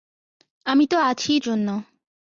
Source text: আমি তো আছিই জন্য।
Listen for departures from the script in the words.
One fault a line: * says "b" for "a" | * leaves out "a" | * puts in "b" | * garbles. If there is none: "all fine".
all fine